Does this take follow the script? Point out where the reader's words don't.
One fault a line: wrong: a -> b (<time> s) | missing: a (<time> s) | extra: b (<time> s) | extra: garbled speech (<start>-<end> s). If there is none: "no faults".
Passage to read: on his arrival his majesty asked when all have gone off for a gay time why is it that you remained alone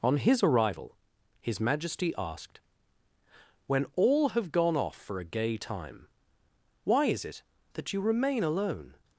wrong: remained -> remain (8.0 s)